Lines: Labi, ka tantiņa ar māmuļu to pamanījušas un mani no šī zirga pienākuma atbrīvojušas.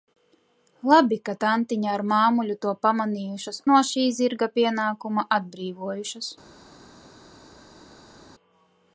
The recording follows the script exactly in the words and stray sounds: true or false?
false